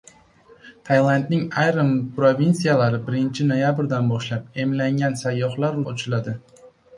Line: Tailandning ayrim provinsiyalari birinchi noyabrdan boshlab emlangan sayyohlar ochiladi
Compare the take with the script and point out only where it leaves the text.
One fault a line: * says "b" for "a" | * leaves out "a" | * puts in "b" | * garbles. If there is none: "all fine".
all fine